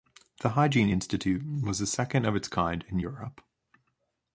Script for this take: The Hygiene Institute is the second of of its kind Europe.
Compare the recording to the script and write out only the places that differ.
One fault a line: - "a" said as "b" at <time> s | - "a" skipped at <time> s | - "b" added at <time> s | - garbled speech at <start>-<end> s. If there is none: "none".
- "is" said as "was" at 1.6 s
- "of" skipped at 2.3 s
- "in" added at 2.9 s